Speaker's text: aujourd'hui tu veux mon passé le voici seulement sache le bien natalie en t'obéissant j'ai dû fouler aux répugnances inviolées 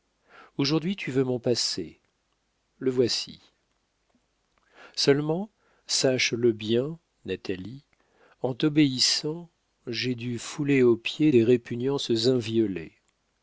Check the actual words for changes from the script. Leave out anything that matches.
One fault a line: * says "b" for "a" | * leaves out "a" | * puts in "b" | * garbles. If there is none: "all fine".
* puts in "pieds des"